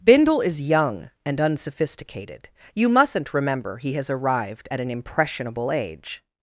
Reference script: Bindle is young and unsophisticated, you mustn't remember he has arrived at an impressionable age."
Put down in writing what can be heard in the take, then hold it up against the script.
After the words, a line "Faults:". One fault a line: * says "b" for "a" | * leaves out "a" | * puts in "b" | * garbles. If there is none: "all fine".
Bindle is young and unsophisticated, you mustn't remember he has arrived at an impressionable age."
Faults:
all fine